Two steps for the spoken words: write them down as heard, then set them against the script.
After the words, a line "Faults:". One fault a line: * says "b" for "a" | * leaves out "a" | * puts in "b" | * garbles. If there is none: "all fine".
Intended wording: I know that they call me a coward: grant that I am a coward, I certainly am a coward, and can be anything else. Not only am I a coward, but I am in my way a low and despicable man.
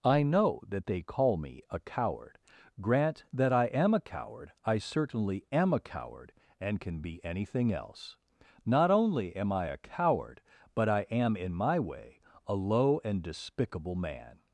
I know that they call me a coward: grant that I am a coward, I certainly am a coward, and can be anything else. Not only am I a coward, but I am in my way a low and despicable man.
Faults:
all fine